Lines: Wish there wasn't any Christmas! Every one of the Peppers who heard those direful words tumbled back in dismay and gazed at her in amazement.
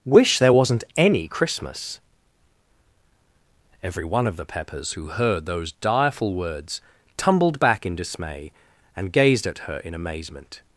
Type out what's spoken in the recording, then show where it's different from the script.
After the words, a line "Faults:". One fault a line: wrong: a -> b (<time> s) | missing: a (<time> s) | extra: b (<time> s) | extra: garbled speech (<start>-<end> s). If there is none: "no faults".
Wish there wasn't any Christmas! Every one of the Peppers who heard those direful words tumbled back in dismay and gazed at her in amazement.
Faults:
no faults